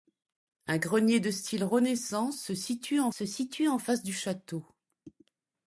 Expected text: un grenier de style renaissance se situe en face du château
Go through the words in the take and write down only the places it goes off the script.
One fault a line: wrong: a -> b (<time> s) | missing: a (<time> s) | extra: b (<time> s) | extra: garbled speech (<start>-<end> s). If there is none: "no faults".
extra: se situe en (3.1 s)